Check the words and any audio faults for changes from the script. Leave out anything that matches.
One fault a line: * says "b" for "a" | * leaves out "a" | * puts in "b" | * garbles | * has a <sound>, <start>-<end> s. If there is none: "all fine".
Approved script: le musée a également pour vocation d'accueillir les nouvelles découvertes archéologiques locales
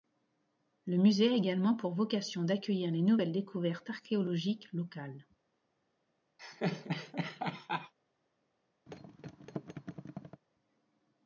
* has a laugh, 6.4-7.9 s
* has a thud, 8.9-10.4 s